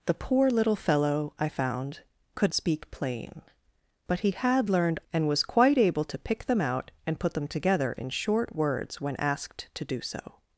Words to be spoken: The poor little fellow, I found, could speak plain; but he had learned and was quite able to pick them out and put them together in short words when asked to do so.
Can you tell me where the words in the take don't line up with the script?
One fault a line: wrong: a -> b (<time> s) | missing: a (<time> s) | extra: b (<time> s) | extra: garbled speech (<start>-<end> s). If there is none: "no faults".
no faults